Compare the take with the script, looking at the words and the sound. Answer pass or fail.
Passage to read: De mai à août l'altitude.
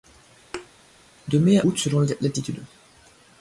fail